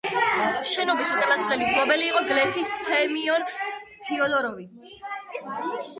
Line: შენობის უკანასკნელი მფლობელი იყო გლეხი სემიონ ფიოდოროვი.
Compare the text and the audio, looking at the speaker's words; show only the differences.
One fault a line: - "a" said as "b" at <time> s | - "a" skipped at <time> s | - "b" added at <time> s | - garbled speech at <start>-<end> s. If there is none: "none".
none